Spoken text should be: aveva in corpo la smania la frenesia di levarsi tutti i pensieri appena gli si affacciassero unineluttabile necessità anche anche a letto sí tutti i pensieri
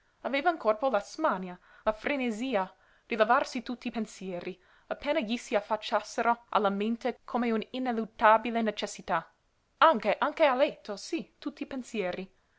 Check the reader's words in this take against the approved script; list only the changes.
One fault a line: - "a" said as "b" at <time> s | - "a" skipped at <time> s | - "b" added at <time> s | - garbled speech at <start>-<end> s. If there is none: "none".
- "alla mente come" added at 6.5 s